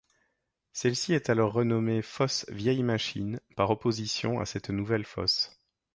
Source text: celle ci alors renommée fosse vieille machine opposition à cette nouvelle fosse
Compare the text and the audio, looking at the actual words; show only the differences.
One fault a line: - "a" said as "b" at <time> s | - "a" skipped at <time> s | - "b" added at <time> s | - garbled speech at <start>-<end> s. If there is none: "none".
- "est" added at 1.1 s
- "par" added at 3.5 s